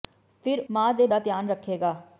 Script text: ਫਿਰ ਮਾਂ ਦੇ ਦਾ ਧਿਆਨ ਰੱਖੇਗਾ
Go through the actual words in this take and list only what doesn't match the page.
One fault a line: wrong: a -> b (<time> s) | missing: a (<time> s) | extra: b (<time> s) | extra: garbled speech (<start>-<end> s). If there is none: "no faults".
no faults